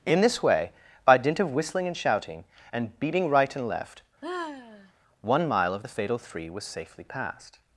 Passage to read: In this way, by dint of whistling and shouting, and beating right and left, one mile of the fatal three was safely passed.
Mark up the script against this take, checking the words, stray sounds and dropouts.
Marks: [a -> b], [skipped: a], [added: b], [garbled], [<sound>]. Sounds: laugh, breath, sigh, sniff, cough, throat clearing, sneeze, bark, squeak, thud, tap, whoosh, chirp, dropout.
In this way, by dint of whistling and shouting, and beating right and left, [sigh] one mile of the fatal three was safely passed.